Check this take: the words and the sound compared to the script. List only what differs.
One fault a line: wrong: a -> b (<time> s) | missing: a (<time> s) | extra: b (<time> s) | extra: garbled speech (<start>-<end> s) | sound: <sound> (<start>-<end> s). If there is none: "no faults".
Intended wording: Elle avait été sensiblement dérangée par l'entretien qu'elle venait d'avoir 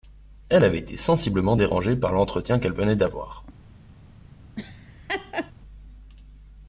sound: laugh (4.6-5.5 s)